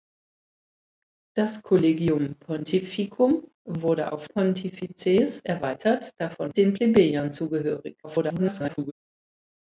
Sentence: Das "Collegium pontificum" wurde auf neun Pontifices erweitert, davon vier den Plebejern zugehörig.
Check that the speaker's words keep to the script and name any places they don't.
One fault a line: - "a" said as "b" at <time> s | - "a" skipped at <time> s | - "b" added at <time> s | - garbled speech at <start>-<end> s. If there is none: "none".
- "neun" skipped at 4.3 s
- "vier" skipped at 6.5 s
- garbled speech at 8.0-8.9 s